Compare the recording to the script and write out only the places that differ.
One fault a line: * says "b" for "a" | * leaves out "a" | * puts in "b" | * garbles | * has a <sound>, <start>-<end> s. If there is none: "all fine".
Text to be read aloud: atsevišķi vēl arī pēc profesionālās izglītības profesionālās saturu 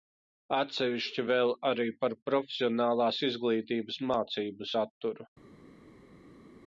* says "par" for "pēc"
* says "mācību" for "profesionālās"